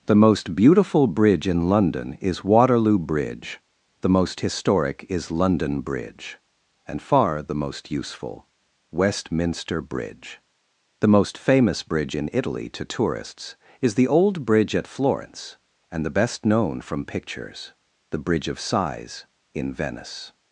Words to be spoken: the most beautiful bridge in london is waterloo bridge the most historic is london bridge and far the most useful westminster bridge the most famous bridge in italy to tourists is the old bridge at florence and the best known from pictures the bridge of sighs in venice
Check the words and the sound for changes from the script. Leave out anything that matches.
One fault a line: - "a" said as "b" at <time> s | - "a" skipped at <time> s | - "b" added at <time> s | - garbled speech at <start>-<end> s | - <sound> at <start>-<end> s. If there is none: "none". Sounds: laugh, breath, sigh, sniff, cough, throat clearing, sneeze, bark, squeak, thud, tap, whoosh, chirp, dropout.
none